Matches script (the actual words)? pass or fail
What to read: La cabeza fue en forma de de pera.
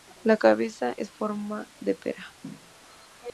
fail